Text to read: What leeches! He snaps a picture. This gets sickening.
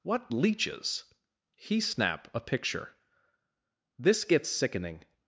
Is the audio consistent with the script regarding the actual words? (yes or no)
no